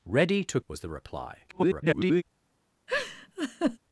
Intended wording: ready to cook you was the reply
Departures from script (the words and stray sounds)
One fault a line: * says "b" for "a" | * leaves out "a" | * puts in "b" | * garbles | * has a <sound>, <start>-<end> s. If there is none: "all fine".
* leaves out "cook you"
* garbles
* has a laugh, 2.9-3.8 s